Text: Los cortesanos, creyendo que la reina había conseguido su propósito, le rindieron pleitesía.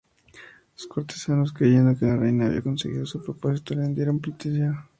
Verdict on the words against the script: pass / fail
pass